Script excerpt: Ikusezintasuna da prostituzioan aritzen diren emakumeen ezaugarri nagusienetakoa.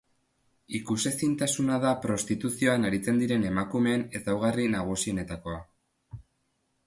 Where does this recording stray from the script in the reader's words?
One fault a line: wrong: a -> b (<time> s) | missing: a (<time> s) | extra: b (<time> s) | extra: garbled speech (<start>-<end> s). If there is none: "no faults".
no faults